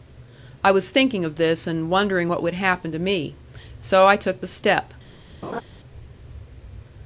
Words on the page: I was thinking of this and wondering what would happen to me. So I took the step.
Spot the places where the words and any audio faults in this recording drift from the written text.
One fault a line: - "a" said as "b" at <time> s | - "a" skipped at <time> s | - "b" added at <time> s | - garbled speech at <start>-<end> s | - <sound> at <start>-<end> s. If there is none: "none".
- laugh at 5.4-5.6 s